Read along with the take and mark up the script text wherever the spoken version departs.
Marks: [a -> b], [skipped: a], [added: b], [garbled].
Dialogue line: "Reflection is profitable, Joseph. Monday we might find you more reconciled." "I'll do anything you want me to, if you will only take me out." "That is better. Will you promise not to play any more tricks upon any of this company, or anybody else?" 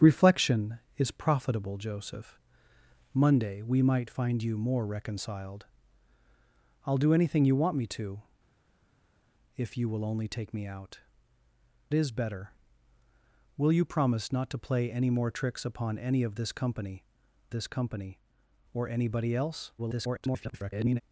"Reflection is profitable, Joseph. Monday we might find you more reconciled." "I'll do anything you want me to, if you will only take me out." [skipped: "That] is better. Will you promise not to play any more tricks upon any of this company, [added: this company] or anybody else?" [garbled]